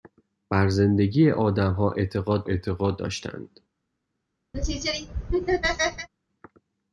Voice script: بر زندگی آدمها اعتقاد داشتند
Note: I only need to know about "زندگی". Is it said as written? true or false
true